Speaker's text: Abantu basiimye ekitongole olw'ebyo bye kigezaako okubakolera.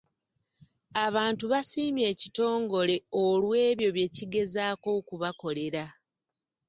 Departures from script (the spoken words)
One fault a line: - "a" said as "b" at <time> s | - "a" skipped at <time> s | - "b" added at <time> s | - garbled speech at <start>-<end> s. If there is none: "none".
none